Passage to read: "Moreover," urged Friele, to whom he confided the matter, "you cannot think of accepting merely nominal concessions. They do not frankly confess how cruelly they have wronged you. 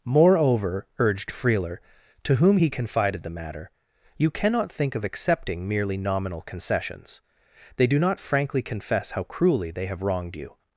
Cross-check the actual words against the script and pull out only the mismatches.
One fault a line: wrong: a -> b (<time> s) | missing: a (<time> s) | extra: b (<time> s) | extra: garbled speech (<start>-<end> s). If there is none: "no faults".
no faults